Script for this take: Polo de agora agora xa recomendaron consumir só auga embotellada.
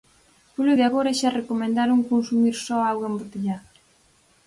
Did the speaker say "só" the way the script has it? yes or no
yes